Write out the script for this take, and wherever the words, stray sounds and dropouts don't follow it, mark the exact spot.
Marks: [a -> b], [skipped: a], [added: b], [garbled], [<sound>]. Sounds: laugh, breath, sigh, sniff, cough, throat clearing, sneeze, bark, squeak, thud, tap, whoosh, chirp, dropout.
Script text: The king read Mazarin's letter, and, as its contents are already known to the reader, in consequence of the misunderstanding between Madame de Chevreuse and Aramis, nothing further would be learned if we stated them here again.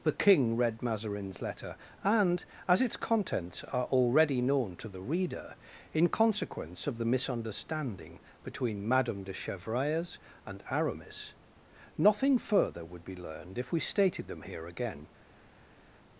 The king read Mazarin's letter, and, as its contents are already known to the reader, in consequence of the misunderstanding between Madame de Chevreuse and Aramis, nothing further would be learned if we stated them here again.